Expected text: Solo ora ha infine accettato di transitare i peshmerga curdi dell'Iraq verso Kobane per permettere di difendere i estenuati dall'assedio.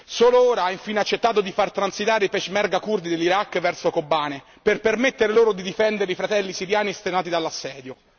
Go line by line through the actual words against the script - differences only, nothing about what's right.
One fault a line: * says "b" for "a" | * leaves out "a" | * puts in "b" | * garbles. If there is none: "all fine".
* puts in "far"
* puts in "loro"
* puts in "fratelli siriani"